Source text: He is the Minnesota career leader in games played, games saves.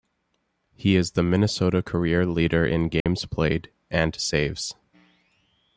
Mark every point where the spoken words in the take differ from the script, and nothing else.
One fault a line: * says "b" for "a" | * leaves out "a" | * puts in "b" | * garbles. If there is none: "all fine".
* says "and" for "games"